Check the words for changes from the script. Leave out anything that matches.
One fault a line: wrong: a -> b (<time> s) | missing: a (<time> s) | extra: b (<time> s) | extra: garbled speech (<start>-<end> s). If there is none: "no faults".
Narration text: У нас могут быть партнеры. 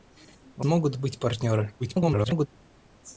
missing: нас (0.7 s)
extra: garbled speech (1.8-2.5 s)